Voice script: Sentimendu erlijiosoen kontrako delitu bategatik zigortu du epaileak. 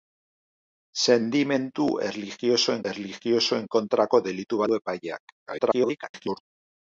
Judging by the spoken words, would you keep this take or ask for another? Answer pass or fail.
fail